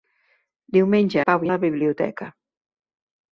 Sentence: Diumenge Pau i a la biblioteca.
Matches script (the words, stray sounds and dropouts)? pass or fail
pass